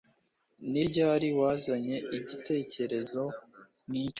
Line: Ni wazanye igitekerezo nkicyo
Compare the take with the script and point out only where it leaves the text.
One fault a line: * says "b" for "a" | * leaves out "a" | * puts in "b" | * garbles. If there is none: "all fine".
* puts in "ryari"